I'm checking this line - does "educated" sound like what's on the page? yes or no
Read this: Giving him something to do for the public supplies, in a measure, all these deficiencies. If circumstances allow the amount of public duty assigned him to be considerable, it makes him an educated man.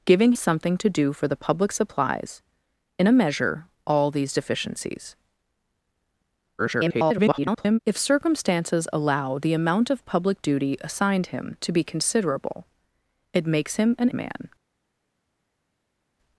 no